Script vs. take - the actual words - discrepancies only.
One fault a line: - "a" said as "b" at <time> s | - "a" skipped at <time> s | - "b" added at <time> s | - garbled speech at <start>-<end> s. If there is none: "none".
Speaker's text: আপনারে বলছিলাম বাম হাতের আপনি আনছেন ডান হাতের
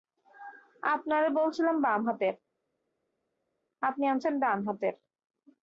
none